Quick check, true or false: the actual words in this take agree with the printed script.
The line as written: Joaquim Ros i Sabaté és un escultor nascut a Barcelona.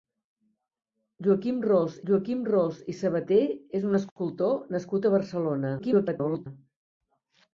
false